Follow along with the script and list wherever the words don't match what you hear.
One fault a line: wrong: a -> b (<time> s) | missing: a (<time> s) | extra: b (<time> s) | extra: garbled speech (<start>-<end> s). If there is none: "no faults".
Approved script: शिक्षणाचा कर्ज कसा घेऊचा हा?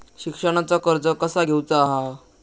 no faults